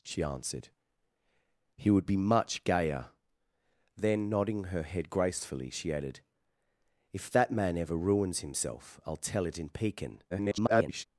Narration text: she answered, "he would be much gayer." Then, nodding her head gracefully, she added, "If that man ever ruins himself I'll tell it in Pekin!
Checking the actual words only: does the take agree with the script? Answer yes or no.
no